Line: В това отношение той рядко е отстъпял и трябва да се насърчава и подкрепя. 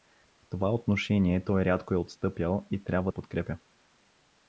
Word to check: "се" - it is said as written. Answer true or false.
false